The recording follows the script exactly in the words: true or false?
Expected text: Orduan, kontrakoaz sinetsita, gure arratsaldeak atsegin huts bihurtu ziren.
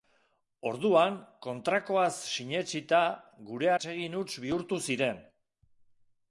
false